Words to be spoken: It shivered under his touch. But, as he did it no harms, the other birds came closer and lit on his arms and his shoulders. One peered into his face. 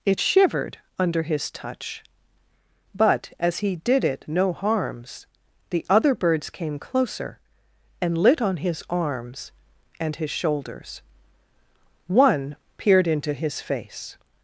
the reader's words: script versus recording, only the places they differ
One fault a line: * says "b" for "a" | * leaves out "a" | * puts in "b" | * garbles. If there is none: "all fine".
all fine